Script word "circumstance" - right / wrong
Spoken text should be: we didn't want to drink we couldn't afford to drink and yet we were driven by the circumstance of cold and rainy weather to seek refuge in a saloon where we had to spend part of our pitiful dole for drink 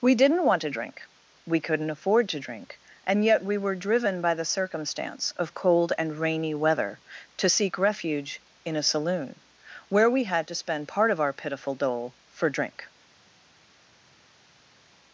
right